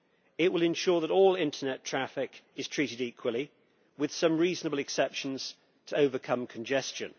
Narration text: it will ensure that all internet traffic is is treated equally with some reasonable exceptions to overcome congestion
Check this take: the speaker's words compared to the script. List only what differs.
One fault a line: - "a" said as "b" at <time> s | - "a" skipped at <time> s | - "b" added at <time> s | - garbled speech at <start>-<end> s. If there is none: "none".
- "is" skipped at 2.7 s